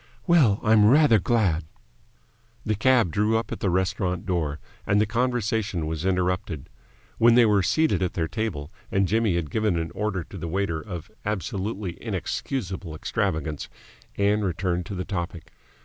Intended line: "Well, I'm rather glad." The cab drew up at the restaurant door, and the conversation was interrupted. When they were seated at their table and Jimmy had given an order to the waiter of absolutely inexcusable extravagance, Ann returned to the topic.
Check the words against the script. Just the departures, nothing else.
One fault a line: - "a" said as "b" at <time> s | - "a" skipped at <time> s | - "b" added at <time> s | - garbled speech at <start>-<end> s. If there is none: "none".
none